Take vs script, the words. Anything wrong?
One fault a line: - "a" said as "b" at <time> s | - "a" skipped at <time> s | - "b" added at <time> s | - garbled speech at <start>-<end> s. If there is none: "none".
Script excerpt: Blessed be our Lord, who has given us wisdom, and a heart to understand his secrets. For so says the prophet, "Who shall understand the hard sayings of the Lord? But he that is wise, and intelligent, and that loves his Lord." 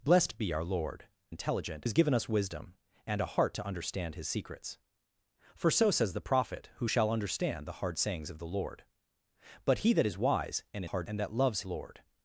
- "who" said as "intelligent" at 1.3 s
- "intelligent" said as "hard" at 10.8 s
- "his" skipped at 11.6 s